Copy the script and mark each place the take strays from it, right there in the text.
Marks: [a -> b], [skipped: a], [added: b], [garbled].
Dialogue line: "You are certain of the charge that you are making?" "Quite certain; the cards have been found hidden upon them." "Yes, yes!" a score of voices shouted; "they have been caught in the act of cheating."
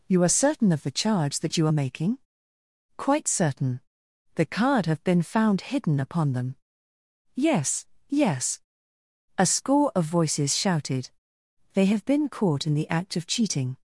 "You are certain of the charge that you are making?" "Quite certain; the [cards -> card] have been found hidden upon them." "Yes, yes!" a score of voices shouted; "they have been caught in the act of cheating."